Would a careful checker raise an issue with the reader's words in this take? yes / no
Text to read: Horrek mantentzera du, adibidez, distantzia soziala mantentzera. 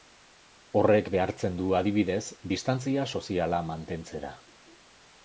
yes